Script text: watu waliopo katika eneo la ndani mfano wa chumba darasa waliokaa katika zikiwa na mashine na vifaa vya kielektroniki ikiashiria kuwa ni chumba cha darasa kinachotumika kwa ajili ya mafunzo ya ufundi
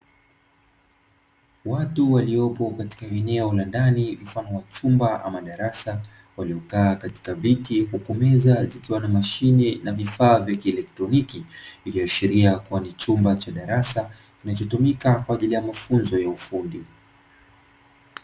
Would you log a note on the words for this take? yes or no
yes